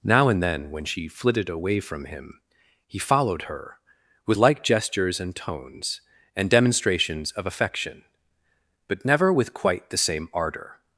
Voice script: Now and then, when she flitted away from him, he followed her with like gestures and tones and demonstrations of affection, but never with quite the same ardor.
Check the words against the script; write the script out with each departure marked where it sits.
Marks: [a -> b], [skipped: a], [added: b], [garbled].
Now and then, when she flitted away from him, he followed her with like gestures and tones and demonstrations of affection, but never with quite the same ardor.